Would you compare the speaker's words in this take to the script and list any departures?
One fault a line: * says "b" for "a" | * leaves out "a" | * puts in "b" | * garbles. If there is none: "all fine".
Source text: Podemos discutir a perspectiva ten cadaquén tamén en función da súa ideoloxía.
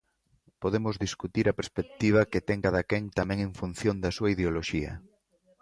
* puts in "que"